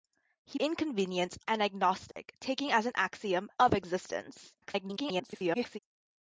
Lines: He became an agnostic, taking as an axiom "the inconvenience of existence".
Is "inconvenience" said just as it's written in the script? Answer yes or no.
no